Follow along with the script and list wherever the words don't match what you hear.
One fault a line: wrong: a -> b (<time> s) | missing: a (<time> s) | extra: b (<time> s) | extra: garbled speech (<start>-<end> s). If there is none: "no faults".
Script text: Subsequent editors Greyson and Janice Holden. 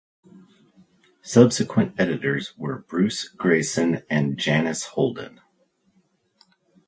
extra: were Bruce (2.6 s)